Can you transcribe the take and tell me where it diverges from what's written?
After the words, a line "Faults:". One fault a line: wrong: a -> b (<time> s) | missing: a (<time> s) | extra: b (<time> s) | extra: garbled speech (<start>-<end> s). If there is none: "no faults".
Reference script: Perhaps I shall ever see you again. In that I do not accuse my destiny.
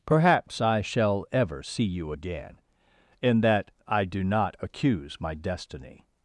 Perhaps I shall ever see you again. In that I do not accuse my destiny.
Faults:
no faults